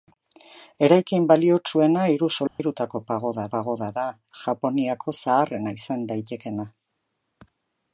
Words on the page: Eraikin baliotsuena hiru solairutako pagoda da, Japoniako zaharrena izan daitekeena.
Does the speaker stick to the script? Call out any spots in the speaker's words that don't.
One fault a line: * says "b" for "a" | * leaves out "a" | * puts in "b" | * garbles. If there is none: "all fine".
* puts in "pagoda"